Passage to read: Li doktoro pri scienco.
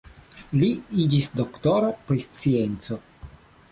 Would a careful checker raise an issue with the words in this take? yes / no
yes